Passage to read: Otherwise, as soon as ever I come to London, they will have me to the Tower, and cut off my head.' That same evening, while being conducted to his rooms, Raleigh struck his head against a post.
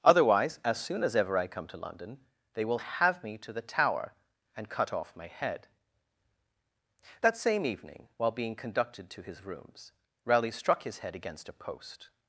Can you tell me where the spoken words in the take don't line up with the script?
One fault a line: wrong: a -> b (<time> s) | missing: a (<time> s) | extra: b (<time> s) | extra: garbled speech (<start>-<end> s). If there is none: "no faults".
no faults